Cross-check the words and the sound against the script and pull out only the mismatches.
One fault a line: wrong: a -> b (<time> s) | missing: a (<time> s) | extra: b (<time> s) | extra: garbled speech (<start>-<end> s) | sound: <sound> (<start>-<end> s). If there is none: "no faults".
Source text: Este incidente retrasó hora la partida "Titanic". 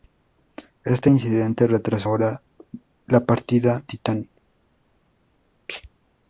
no faults